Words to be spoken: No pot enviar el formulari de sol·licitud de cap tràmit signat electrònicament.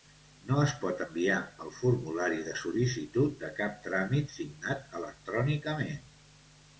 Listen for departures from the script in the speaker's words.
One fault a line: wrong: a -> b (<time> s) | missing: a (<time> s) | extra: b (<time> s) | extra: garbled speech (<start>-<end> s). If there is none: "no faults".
extra: es (0.6 s)